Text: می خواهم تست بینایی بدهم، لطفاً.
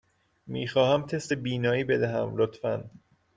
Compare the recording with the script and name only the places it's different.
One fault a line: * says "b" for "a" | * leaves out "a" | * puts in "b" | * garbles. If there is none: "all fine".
all fine